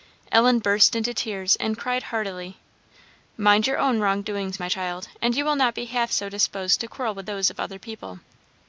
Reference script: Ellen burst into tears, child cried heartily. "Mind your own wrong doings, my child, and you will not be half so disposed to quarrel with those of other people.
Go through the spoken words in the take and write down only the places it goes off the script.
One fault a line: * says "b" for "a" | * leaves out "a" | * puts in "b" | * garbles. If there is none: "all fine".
* says "and" for "child"